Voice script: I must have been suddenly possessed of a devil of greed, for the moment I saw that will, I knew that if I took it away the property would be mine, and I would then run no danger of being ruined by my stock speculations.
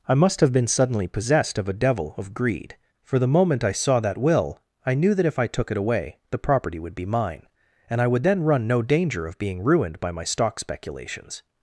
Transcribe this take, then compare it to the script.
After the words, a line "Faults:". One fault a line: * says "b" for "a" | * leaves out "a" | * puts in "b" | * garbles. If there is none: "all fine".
I must have been suddenly possessed of a devil of greed, for the moment I saw that will, I knew that if I took it away the property would be mine, and I would then run no danger of being ruined by my stock speculations.
Faults:
all fine